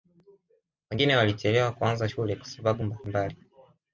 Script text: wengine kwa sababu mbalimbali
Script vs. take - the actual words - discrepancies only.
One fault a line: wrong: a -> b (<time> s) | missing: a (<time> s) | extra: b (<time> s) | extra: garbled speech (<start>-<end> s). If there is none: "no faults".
extra: walichelewa kuanza shule (1.1 s)